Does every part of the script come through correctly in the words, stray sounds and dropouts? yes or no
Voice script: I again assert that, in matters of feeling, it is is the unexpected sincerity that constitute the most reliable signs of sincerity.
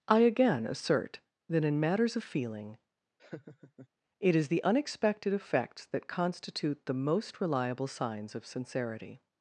no